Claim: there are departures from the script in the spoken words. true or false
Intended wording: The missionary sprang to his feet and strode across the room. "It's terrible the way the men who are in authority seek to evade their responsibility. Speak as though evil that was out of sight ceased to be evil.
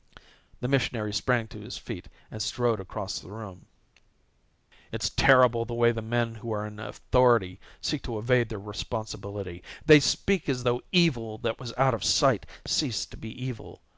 true